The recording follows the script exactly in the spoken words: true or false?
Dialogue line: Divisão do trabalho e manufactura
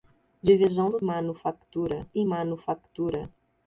false